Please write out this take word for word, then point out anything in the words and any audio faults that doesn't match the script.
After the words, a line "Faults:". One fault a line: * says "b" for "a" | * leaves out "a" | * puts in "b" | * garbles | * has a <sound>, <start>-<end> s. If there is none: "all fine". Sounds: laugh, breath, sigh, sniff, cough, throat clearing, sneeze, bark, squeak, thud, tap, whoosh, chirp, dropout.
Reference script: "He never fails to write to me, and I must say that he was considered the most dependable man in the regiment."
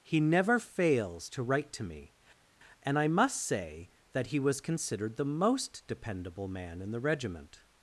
"He never fails to write to me, and I must say that he was considered the most dependable man in the regiment."
Faults:
all fine